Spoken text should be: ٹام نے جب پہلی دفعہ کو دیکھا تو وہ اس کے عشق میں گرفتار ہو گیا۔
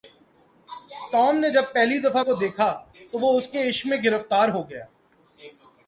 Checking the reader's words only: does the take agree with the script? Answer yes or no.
yes